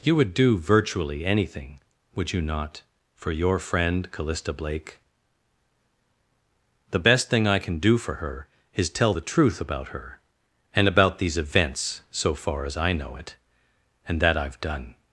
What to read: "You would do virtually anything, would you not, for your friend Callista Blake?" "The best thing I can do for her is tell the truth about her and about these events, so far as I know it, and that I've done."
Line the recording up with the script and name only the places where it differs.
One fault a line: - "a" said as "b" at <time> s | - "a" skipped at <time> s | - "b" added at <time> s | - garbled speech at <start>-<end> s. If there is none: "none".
none